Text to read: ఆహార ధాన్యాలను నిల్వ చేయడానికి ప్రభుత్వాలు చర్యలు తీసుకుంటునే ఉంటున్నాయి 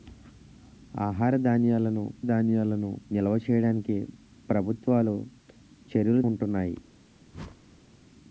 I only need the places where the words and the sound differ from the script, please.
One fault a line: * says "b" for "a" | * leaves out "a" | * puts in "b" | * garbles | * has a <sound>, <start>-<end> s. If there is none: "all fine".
* puts in "ధాన్యాలను"
* leaves out "తీసుకుంటునే"
* has a whoosh, 7.3-8.0 s